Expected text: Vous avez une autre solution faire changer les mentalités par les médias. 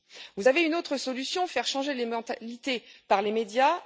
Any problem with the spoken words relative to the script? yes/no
no